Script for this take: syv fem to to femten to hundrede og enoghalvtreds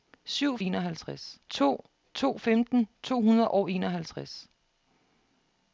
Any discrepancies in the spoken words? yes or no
yes